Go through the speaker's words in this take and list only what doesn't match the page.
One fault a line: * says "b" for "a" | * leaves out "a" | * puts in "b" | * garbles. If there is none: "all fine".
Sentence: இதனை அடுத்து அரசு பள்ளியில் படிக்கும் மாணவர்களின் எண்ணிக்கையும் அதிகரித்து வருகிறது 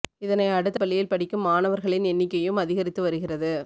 * leaves out "அரசு"